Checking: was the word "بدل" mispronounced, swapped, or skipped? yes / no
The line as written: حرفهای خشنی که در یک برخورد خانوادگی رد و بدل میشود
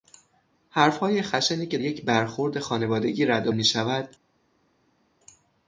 yes